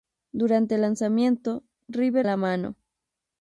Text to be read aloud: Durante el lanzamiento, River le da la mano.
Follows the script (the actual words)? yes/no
no